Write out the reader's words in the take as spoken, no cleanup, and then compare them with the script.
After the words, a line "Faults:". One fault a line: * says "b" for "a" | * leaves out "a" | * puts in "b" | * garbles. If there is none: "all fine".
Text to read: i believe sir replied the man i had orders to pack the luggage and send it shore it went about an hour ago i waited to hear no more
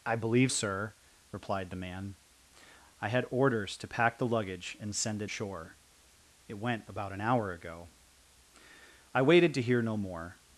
i believe sir replied the man i had orders to pack the luggage and send it shore it went about an hour ago i waited to hear no more
Faults:
all fine